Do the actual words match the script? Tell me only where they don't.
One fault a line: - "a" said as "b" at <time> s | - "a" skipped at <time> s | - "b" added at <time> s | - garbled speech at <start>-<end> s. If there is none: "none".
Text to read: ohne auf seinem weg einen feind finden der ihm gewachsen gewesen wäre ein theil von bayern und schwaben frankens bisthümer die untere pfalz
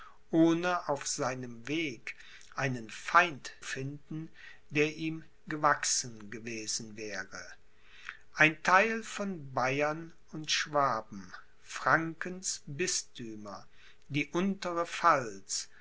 none